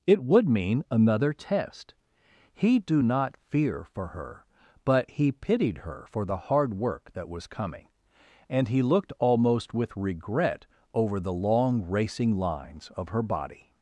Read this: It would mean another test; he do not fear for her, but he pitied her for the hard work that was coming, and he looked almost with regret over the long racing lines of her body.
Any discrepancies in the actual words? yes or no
no